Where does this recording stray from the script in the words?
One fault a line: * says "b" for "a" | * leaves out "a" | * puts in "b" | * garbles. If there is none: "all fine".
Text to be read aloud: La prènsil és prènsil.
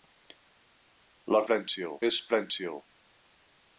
all fine